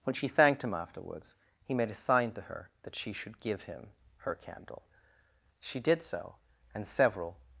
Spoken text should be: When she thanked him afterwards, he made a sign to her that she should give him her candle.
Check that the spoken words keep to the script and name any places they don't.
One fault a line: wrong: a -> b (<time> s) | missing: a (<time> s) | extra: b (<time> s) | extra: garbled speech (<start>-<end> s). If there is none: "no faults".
extra: She did so and several (5.6 s)